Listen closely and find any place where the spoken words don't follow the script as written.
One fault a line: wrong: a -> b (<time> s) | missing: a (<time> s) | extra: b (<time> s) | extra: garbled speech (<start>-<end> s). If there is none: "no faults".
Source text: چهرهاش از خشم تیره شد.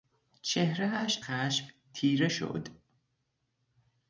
missing: از (1.2 s)